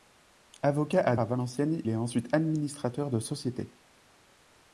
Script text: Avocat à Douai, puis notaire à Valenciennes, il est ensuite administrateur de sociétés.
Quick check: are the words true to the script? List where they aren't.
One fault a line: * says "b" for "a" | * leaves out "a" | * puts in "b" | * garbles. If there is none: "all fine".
* leaves out "Douai puis notaire"
* leaves out "il"